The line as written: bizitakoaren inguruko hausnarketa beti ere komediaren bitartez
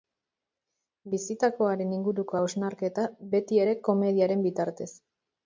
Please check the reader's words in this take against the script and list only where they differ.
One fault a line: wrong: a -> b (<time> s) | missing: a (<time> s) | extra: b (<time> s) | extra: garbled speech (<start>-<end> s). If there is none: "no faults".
no faults